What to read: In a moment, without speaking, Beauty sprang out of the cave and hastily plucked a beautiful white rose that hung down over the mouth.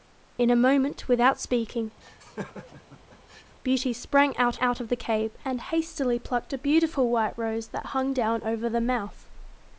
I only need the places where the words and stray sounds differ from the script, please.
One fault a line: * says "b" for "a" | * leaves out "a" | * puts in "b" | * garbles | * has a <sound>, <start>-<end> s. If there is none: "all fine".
* has a laugh, 2.0-3.6 s
* puts in "out"